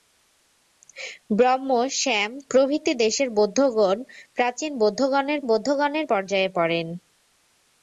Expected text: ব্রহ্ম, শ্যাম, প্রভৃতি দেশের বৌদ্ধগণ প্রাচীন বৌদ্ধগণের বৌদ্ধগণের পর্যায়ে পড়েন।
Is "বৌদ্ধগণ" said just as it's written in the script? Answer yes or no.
yes